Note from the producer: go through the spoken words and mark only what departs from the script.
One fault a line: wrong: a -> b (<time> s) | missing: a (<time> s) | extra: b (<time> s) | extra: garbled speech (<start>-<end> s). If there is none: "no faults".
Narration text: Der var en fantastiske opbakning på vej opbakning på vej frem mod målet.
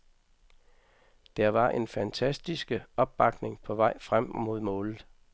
missing: opbakning på vej (4.0 s)